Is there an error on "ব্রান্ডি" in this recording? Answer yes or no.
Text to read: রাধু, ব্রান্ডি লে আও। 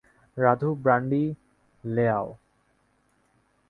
no